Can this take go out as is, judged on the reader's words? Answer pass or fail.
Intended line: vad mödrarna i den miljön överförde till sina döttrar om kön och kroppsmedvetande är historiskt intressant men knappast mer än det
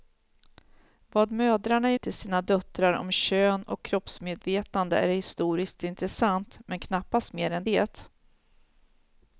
fail